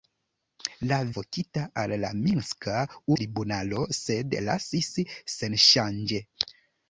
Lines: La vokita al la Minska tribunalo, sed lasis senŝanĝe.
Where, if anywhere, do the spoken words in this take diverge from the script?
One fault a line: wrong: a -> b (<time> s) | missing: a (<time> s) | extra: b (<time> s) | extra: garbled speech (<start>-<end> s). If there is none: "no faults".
no faults